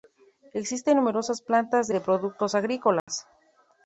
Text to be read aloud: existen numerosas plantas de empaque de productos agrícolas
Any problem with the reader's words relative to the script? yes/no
yes